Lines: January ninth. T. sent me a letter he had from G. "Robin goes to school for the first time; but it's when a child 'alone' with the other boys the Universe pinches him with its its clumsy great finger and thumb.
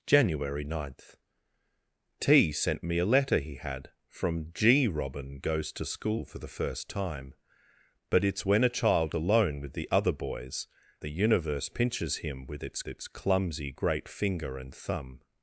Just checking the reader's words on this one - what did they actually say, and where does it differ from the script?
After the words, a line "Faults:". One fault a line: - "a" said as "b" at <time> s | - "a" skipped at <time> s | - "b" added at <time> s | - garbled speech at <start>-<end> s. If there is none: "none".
January ninth. T. sent me a letter he had from G. "Robin goes to school for the first time; but it's when a child 'alone' with the other boys the Universe pinches him with its its clumsy great finger and thumb.
Faults:
none